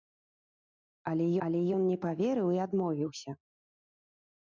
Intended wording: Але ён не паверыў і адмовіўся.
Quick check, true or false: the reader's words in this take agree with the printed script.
false